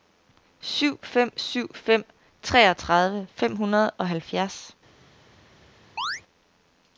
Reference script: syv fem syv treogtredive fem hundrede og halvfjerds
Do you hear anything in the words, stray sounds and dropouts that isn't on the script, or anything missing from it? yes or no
yes